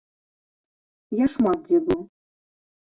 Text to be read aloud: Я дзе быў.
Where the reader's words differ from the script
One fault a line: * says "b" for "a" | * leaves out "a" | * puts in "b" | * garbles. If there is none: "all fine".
* puts in "шмат"